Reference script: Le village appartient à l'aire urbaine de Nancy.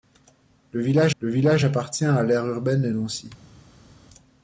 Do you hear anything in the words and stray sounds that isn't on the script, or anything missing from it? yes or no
yes